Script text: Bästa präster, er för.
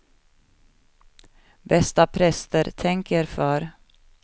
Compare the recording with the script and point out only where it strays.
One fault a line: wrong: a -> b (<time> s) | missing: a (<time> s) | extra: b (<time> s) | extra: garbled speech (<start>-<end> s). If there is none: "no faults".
extra: tänk (2.8 s)